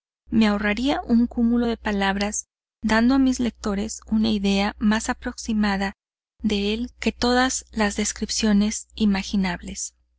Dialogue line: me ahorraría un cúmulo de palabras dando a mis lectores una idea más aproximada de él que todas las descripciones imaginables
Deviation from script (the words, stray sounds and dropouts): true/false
false